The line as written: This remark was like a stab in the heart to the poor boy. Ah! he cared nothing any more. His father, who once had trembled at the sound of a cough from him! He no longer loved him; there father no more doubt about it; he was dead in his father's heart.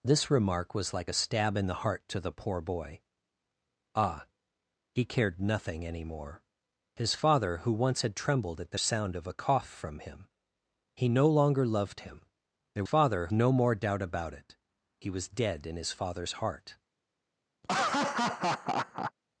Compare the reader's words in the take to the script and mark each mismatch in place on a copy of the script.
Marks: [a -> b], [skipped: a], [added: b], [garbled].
This remark was like a stab in the heart to the poor boy. Ah! he cared nothing any more. His father, who once had trembled at the sound of a cough from him! He no longer loved him; there father no more doubt about it; he was dead in his father's heart.